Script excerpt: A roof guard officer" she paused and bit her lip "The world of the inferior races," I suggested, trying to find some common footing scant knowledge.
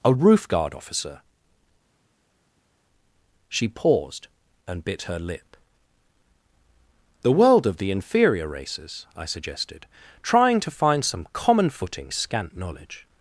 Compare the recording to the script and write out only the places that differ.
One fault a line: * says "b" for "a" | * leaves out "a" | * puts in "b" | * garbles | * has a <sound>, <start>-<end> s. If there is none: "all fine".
all fine